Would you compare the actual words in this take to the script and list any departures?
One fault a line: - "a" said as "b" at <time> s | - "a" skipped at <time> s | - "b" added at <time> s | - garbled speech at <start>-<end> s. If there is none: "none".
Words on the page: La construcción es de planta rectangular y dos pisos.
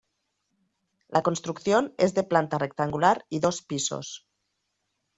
none